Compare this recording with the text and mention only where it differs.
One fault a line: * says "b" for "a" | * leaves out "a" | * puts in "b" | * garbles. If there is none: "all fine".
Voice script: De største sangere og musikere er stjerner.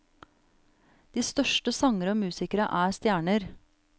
all fine